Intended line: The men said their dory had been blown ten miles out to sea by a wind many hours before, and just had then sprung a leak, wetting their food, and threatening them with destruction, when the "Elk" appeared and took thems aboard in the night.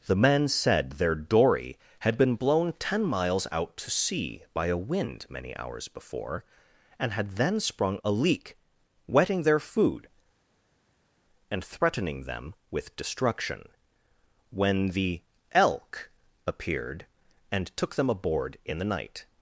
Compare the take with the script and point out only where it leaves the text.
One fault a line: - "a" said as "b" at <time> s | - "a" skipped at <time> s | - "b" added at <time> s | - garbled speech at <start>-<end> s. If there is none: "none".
- "just" skipped at 7.1 s
- "thems" said as "them" at 17.9 s